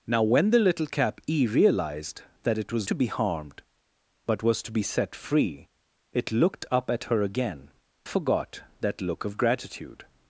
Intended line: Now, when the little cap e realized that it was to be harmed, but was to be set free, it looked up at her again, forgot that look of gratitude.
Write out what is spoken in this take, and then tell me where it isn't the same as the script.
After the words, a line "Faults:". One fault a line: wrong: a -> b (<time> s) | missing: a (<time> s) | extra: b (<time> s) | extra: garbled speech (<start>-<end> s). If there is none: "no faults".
Now, when the little cap e realized that it was to be harmed, but was to be set free, it looked up at her again, forgot that look of gratitude.
Faults:
no faults